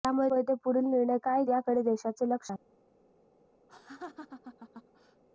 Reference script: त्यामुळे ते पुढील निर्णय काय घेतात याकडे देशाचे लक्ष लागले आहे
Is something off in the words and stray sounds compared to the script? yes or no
yes